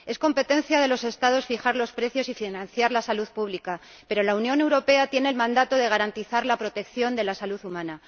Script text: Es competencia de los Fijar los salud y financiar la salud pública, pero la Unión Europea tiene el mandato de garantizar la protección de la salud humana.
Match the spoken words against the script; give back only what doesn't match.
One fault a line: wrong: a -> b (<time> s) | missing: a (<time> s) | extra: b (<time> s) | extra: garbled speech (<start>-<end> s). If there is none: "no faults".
extra: Estados (1.0 s)
wrong: salud -> precios (1.9 s)